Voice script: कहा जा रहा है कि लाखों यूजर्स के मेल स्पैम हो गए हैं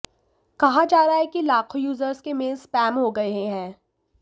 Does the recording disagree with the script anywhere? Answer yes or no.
no